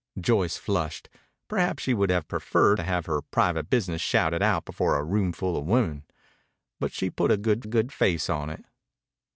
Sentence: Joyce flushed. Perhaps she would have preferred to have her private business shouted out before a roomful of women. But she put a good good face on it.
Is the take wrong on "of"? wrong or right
right